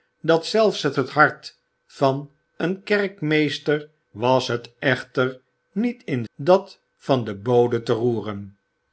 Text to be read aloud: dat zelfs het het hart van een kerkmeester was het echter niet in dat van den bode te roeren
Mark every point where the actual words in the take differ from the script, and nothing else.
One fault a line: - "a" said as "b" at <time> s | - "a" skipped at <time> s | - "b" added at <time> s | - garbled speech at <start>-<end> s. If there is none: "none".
none